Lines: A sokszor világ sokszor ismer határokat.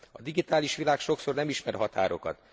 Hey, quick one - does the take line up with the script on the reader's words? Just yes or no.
no